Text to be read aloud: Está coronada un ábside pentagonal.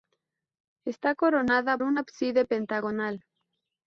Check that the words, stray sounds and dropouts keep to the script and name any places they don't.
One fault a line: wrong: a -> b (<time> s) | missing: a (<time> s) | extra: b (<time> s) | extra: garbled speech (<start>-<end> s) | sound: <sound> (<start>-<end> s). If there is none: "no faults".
no faults